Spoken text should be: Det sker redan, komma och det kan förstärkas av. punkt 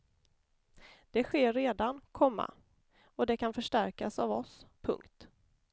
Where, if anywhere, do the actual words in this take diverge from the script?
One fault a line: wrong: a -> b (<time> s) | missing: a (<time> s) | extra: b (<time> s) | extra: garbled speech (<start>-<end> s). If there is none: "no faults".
extra: oss (4.3 s)